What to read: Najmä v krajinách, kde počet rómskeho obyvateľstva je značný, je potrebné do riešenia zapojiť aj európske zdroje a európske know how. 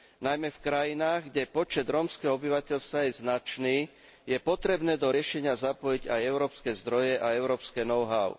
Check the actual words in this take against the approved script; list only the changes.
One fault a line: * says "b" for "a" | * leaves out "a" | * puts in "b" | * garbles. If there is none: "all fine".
all fine